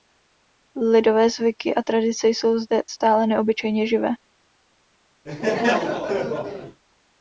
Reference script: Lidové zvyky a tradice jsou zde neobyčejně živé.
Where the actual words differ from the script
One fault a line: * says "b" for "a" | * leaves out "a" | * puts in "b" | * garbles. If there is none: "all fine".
* puts in "stále"